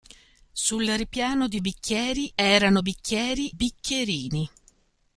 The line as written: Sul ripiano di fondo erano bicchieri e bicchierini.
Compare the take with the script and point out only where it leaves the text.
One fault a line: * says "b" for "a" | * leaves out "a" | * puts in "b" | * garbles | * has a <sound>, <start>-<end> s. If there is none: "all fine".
* says "bicchieri" for "fondo"
* leaves out "e"